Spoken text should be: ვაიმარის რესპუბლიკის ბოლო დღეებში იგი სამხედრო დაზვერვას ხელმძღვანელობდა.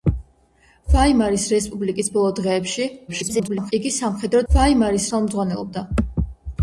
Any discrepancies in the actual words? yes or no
yes